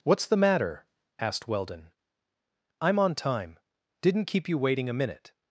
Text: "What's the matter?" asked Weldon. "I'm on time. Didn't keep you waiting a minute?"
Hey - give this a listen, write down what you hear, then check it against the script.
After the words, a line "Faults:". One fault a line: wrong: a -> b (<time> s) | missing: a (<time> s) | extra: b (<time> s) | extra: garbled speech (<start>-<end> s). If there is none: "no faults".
"What's the matter?" asked Weldon. "I'm on time. Didn't keep you waiting a minute?"
Faults:
no faults